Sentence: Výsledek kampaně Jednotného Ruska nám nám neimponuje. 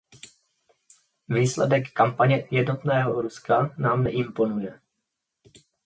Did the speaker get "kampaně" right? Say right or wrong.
right